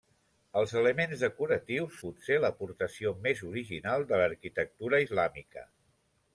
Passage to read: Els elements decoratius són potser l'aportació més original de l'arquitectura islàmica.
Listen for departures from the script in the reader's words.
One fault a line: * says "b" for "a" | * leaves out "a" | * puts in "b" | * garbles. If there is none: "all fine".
* leaves out "són"